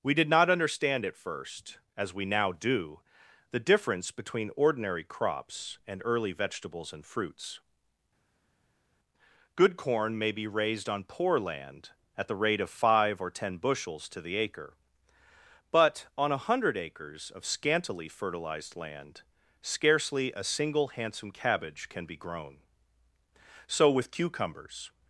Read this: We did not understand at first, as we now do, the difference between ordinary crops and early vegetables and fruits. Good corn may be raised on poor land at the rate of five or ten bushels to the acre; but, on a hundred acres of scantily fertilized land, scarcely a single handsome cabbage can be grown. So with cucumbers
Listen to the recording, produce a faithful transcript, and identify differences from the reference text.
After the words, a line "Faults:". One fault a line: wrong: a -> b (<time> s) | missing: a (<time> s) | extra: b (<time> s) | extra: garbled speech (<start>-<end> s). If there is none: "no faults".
We did not understand at first, as we now do, the difference between ordinary crops and early vegetables and fruits. Good corn may be raised on poor land at the rate of five or ten bushels to the acre; but, on a hundred acres of scantily fertilized land, scarcely a single handsome cabbage can be grown. So with cucumbers
Faults:
no faults